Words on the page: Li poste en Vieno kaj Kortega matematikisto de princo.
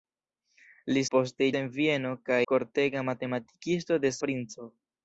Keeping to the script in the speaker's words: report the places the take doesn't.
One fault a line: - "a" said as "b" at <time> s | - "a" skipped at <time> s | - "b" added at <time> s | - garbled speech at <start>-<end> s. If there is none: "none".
none